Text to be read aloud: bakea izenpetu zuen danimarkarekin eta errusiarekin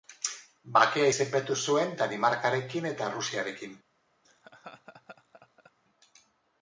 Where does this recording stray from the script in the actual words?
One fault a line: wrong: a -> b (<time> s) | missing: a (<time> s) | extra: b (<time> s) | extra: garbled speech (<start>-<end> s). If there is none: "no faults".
no faults